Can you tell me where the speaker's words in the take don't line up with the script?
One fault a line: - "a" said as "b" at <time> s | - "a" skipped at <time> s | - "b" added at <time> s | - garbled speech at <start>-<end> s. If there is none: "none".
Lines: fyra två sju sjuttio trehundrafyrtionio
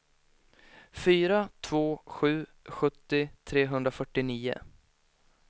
none